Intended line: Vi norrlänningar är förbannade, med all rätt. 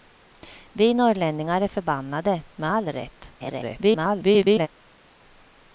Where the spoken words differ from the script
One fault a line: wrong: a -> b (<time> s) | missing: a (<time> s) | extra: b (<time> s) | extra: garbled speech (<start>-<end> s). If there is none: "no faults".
extra: garbled speech (3.4-4.7 s)